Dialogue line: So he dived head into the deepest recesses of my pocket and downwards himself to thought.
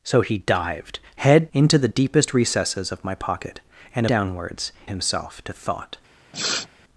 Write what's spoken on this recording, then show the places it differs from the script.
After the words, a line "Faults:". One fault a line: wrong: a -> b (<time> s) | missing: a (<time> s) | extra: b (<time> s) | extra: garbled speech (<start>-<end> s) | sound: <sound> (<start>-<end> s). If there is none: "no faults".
So he dived head into the deepest recesses of my pocket and downwards himself to thought.
Faults:
sound: sniff (6.3-6.7 s)